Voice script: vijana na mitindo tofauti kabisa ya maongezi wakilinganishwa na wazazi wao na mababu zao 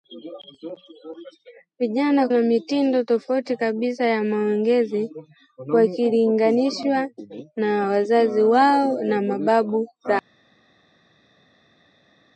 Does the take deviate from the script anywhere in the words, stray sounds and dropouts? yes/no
no